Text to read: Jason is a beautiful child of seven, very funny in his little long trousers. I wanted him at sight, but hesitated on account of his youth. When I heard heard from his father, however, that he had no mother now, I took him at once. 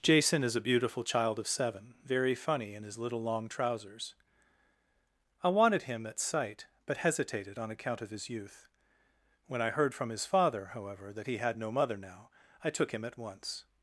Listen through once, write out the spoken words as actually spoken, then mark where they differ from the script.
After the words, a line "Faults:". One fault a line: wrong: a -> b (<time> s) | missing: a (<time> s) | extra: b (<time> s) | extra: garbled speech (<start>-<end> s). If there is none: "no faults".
Jason is a beautiful child of seven, very funny in his little long trousers. I wanted him at sight, but hesitated on account of his youth. When I heard from his father, however, that he had no mother now, I took him at once.
Faults:
missing: heard (9.9 s)